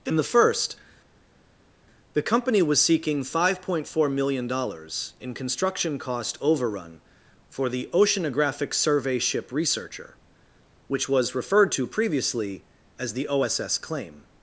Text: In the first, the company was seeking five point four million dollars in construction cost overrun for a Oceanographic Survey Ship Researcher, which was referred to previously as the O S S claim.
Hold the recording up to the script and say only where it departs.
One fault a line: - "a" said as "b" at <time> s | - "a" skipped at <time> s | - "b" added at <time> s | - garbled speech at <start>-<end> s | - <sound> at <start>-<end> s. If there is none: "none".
- "a" said as "the" at 7.7 s